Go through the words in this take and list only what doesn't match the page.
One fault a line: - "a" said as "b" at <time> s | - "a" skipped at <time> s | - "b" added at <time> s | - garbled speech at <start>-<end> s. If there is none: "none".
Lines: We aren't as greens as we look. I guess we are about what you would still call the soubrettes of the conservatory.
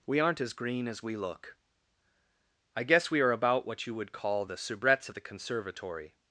- "greens" said as "green" at 0.5 s
- "still" skipped at 4.1 s